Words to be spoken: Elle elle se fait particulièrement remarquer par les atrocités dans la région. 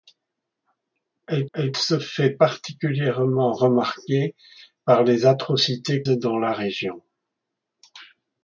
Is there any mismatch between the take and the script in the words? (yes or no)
no